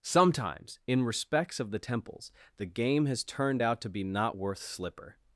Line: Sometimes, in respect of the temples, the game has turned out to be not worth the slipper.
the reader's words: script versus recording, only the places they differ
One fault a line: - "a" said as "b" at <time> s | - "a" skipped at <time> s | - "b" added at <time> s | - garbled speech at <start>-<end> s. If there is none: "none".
- "respect" said as "respects" at 1.0 s
- "the" skipped at 4.6 s